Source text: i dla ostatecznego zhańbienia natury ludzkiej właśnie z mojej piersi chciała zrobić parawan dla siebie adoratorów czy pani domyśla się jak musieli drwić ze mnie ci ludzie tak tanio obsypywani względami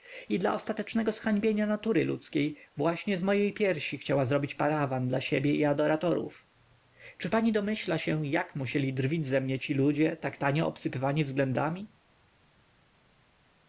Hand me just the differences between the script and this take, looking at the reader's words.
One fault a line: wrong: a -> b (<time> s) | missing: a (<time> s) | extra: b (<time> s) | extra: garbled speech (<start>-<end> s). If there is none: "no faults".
extra: i (5.5 s)